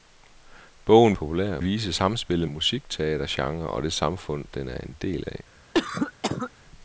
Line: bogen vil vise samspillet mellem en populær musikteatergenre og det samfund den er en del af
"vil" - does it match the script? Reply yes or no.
no